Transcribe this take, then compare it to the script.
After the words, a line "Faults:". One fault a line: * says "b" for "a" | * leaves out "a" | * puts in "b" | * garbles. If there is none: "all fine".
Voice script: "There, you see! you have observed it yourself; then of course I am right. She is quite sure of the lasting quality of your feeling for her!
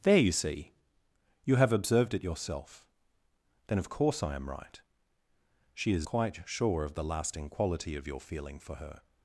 "There, you see! you have observed it yourself; then of course I am right. She is quite sure of the lasting quality of your feeling for her!
Faults:
all fine